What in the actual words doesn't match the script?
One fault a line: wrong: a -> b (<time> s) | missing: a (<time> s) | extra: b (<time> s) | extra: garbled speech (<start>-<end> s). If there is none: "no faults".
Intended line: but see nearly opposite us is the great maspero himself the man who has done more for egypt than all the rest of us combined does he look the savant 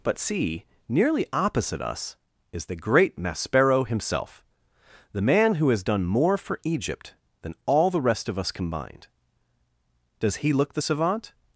no faults